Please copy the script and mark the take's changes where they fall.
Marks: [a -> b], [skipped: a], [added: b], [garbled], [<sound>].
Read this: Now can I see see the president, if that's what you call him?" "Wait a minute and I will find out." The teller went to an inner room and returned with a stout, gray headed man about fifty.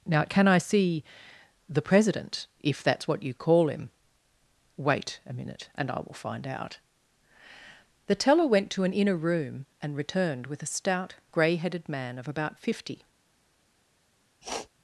Now can I see [skipped: see] the president, if that's what you call him?" "Wait a minute and I will find out." The teller went to an inner room and returned with a stout, gray headed man [added: of] about fifty. [sniff]